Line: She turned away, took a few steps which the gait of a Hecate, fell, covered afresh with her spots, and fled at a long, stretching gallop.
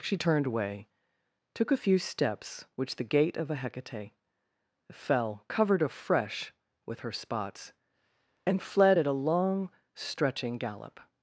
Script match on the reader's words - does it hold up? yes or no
yes